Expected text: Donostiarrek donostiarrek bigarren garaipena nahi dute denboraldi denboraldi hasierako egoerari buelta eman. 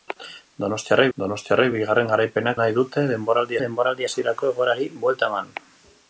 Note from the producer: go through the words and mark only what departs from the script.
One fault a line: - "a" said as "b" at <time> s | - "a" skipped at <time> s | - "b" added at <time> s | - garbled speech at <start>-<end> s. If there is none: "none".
none